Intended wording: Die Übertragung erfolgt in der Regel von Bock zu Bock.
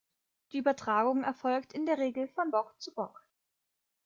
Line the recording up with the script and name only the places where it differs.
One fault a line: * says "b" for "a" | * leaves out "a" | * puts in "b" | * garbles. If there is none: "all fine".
all fine